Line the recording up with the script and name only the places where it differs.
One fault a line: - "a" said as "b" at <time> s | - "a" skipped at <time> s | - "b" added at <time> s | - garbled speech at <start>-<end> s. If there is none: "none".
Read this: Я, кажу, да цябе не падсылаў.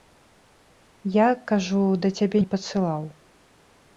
none